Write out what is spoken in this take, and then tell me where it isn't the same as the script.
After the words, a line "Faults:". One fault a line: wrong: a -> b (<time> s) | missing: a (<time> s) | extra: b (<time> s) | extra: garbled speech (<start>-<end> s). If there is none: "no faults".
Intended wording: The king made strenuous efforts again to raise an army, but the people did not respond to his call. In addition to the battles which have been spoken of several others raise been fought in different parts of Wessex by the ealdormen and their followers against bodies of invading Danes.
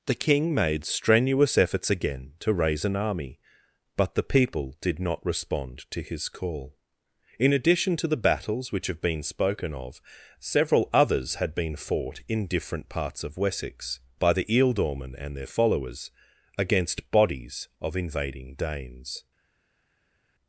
The king made strenuous efforts again to raise an army, but the people did not respond to his call. In addition to the battles which have been spoken of several others had been fought in different parts of Wessex by the ealdormen and their followers against bodies of invading Danes.
Faults:
wrong: raise -> had (11.3 s)